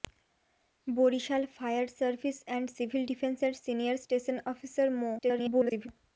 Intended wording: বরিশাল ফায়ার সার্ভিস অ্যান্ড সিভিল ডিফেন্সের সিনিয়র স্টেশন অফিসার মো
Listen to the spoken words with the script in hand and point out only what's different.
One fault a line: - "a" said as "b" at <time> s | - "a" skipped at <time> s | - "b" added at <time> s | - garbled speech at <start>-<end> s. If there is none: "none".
- garbled speech at 5.2-5.9 s